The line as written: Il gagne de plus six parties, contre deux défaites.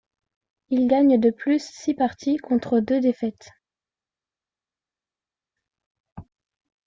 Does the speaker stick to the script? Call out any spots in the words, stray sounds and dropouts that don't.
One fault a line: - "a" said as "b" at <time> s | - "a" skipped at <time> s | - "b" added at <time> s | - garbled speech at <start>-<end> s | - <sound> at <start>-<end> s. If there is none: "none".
none